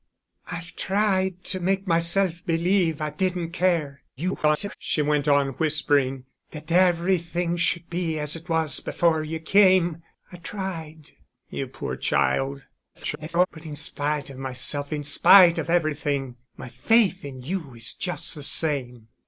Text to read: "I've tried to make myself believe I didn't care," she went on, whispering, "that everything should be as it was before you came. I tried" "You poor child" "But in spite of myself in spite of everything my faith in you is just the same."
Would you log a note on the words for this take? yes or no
yes